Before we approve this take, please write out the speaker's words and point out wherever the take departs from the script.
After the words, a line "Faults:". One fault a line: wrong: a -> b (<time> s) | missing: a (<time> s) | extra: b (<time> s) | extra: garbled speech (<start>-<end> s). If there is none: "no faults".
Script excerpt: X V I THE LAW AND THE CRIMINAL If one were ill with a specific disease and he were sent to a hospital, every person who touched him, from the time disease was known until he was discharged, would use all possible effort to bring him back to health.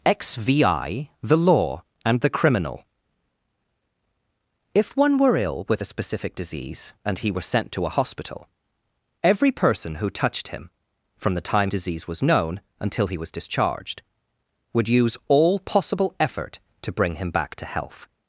X V I THE LAW AND THE CRIMINAL If one were ill with a specific disease and he were sent to a hospital, every person who touched him, from the time disease was known until he was discharged, would use all possible effort to bring him back to health.
Faults:
no faults